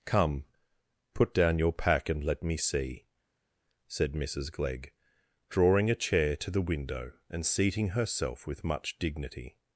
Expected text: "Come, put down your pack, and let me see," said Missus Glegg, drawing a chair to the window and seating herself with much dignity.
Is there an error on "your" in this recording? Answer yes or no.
no